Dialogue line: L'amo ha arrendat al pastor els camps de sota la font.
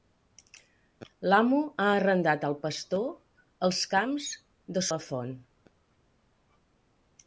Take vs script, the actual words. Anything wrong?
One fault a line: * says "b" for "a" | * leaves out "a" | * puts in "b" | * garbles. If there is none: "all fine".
* leaves out "sota"